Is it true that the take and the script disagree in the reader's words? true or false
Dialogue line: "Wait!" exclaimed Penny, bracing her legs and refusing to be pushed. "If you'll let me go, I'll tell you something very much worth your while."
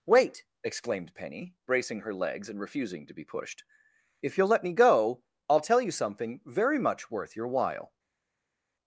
false